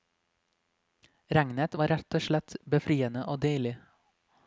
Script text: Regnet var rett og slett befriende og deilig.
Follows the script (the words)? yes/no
yes